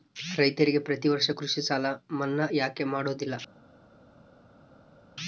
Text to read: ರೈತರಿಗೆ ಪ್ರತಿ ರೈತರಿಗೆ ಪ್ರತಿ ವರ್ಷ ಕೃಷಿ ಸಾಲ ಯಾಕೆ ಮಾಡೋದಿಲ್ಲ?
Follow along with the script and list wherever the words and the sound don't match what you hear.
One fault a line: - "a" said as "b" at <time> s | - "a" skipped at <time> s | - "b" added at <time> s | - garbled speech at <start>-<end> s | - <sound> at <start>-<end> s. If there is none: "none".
- "ರೈತರಿಗೆ ಪ್ರತಿ" skipped at 1.1 s
- "ಮನ್ನಾ" added at 2.1 s